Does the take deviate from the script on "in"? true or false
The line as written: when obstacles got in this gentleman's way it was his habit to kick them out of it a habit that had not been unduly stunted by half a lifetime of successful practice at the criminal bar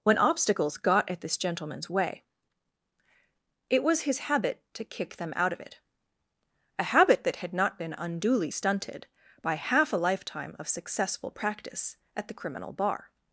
true